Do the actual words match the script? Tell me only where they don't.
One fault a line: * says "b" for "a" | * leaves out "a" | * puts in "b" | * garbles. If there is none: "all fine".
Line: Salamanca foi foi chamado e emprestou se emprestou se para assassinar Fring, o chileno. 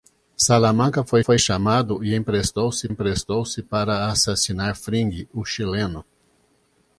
all fine